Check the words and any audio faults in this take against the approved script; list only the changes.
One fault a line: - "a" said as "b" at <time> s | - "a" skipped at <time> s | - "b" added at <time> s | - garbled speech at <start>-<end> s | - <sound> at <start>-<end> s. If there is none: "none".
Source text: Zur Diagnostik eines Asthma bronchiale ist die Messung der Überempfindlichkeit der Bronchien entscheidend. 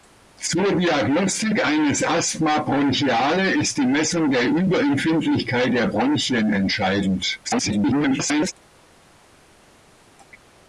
- garbled speech at 7.4-8.5 s